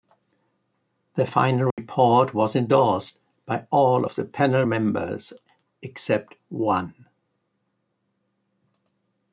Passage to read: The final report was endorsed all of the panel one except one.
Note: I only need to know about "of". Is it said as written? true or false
true